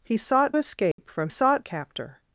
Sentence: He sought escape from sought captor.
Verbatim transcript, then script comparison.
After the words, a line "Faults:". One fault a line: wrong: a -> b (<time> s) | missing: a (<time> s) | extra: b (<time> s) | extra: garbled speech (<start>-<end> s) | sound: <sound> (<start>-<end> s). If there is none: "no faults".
He sought escape from sought captor.
Faults:
sound: dropout (0.9-1.0 s)